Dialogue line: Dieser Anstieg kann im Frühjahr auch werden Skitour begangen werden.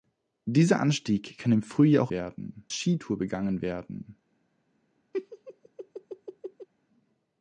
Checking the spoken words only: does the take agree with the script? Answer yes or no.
yes